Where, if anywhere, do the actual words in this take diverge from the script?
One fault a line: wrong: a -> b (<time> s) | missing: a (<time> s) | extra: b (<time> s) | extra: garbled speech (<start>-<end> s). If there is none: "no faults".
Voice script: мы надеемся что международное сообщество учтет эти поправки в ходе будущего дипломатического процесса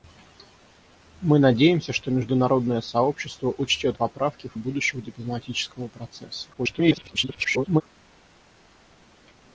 missing: эти (4.0 s)
missing: ходе (4.5 s)
extra: garbled speech (6.5-7.8 s)